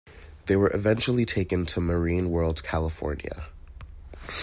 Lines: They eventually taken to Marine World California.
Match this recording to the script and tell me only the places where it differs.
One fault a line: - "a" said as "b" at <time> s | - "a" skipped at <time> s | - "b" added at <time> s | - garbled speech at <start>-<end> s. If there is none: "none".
- "were" added at 0.6 s